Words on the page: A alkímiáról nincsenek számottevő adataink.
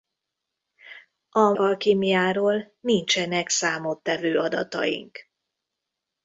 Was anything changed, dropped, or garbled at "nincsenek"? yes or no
no